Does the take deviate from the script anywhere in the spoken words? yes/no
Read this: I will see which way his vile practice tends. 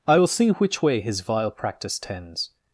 no